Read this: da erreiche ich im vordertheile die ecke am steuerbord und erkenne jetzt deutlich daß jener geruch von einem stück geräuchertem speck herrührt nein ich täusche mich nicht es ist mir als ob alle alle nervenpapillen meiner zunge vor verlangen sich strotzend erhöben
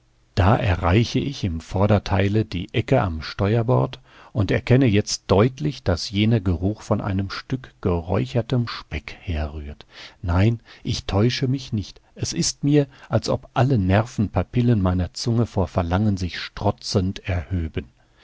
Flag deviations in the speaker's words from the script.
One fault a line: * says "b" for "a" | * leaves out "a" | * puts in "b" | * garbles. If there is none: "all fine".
* leaves out "alle"